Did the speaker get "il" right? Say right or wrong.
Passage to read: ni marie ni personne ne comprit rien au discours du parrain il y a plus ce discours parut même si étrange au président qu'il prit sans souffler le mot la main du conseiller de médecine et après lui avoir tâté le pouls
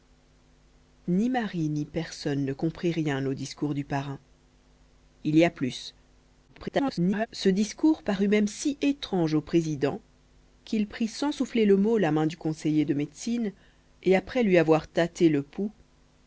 right